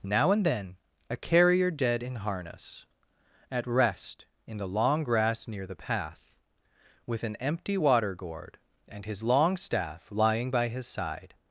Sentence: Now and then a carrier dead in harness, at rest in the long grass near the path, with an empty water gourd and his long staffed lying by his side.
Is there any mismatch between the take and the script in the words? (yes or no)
yes